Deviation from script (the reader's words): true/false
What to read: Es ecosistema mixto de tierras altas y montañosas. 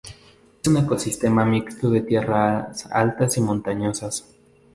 true